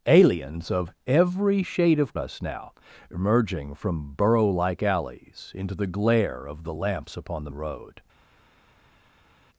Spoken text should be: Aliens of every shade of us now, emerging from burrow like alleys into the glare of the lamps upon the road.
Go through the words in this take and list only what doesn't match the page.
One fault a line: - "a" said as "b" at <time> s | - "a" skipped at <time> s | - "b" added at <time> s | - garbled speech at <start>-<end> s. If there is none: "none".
none